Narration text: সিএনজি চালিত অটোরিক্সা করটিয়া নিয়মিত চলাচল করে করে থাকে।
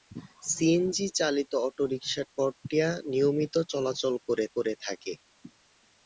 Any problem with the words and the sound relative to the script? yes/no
no